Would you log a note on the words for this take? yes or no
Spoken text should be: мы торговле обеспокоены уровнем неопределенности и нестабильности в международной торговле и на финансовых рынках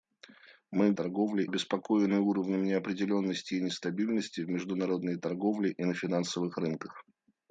no